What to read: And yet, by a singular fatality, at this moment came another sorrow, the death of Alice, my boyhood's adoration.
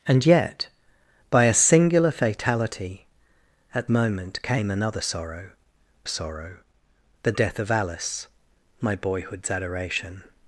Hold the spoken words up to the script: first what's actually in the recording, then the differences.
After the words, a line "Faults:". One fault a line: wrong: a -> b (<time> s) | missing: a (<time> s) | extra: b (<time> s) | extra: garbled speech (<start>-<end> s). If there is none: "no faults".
And yet, by a singular fatality, at moment came another sorrow sorrow, the death of Alice, my boyhood's adoration.
Faults:
missing: this (3.9 s)
extra: sorrow (6.1 s)